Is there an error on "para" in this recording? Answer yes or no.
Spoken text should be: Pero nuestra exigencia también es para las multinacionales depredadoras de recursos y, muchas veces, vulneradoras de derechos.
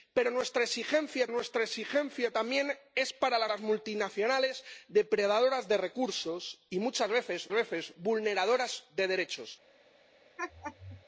no